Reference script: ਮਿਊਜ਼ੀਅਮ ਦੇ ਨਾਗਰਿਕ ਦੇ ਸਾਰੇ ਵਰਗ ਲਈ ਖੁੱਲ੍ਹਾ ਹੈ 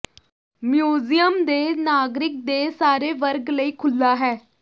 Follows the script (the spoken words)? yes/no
yes